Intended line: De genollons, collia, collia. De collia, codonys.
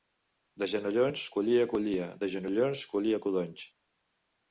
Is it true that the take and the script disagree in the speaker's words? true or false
true